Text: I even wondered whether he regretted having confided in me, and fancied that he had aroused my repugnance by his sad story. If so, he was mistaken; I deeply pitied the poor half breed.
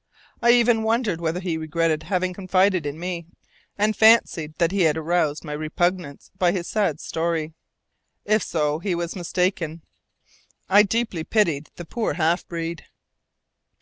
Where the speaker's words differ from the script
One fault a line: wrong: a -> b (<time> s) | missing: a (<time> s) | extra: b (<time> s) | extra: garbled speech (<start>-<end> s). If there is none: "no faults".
no faults